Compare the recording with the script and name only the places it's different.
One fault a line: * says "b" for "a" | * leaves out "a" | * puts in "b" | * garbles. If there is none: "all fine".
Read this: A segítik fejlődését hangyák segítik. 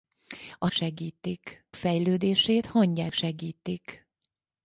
all fine